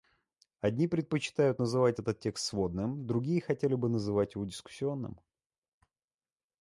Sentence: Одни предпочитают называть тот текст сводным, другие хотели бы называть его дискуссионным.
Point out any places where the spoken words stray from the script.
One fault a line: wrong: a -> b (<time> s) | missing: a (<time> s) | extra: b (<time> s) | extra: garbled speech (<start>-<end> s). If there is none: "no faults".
wrong: тот -> этот (2.0 s)